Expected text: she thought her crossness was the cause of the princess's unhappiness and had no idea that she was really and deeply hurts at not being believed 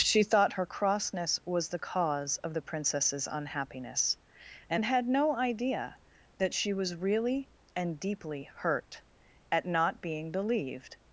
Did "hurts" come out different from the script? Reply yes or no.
yes